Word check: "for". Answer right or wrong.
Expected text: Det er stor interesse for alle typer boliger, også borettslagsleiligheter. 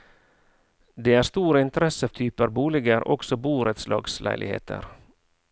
wrong